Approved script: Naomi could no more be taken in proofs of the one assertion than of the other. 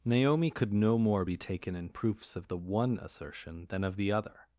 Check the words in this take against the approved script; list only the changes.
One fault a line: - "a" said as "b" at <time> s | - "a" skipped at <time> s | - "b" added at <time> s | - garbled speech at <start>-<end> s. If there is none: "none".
none